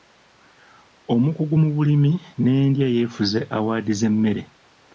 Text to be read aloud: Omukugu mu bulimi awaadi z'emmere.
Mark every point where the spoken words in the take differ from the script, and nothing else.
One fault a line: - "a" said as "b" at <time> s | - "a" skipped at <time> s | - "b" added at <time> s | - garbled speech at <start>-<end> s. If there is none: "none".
- "n'endya yeefuze" added at 2.4 s